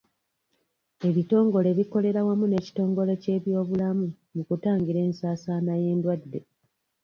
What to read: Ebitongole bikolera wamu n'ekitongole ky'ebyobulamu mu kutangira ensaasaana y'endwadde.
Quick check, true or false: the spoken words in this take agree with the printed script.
true